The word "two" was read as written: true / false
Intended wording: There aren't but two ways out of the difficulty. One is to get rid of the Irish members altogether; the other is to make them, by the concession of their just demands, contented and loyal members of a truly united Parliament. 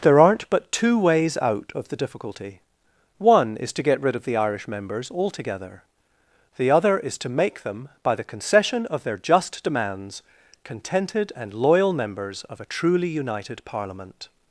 true